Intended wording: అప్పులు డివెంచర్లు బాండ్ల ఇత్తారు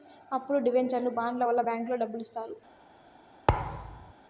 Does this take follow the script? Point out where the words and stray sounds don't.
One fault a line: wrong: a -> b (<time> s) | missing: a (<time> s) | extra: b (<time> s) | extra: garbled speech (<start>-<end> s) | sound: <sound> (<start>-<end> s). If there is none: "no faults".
extra: వల్ల బ్యాంకులో డబ్బులు (1.4 s)
sound: thud (3.5-4.1 s)